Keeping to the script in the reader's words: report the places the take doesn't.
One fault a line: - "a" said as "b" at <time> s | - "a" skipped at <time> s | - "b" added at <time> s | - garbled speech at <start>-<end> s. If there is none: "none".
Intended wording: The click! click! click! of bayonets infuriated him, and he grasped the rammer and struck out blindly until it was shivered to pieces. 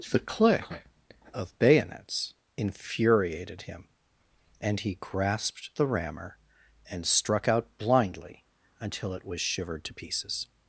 - "click click" skipped at 0.7 s